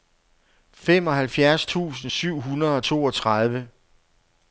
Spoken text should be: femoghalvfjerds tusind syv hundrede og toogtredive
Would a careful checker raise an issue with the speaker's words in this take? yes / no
no